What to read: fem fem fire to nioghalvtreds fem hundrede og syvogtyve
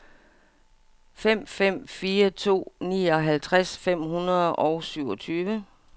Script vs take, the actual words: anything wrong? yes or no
no